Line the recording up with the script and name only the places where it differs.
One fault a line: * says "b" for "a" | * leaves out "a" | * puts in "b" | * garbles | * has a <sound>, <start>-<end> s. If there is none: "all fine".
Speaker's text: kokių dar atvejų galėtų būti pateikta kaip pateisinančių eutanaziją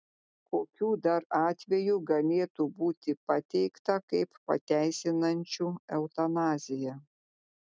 all fine